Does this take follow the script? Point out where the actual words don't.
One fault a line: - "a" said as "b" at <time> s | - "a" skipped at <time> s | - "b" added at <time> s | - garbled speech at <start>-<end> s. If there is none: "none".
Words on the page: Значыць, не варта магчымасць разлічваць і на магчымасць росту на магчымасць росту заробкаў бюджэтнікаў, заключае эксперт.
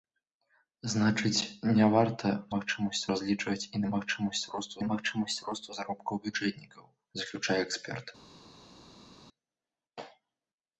none